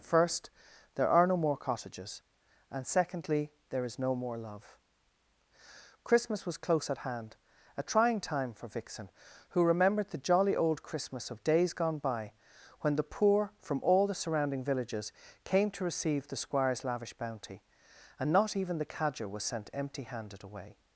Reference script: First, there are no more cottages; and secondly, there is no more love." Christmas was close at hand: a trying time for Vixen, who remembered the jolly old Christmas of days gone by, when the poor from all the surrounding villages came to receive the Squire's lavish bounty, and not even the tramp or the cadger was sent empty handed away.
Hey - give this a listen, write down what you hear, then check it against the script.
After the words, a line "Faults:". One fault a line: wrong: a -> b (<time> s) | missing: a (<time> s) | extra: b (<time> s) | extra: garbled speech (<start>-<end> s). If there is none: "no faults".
First, there are no more cottages; and secondly, there is no more love." Christmas was close at hand: a trying time for Vixen, who remembered the jolly old Christmas of days gone by, when the poor from all the surrounding villages came to receive the Squire's lavish bounty, and not even the cadger was sent empty handed away.
Faults:
missing: tramp or the (18.9 s)